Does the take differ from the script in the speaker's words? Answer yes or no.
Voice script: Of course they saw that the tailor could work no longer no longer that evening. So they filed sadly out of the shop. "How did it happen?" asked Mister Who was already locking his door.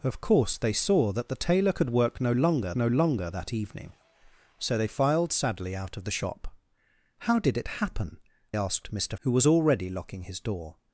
no